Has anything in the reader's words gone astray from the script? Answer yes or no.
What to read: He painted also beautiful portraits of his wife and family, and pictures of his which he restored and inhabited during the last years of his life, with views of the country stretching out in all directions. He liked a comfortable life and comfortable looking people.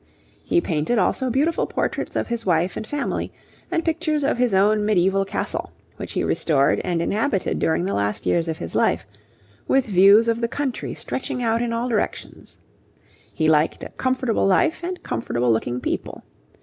yes